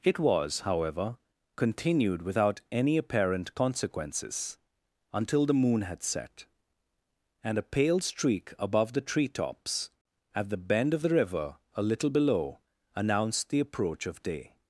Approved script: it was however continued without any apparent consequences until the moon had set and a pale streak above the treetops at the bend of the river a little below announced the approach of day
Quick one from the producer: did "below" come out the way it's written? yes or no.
yes